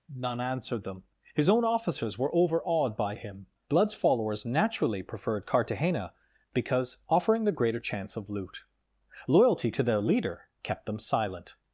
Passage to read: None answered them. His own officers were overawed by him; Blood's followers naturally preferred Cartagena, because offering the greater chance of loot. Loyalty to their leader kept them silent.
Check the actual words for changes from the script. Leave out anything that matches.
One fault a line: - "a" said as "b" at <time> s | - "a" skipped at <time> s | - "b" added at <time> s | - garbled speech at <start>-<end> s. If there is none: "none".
none